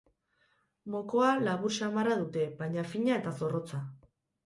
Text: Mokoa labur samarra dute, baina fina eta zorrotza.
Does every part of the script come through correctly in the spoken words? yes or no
yes